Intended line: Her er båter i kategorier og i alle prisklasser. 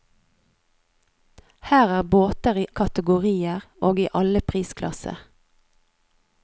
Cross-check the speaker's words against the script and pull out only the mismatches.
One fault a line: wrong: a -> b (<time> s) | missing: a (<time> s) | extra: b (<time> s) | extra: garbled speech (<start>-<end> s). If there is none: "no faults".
no faults